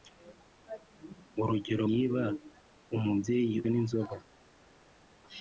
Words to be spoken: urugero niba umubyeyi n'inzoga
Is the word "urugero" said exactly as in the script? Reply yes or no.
yes